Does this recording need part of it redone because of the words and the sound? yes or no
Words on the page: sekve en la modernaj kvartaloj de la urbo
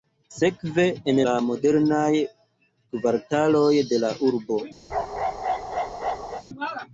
yes